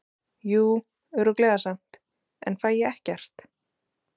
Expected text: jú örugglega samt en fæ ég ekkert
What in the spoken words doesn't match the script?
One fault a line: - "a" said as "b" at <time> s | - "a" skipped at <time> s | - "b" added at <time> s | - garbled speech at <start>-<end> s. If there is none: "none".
none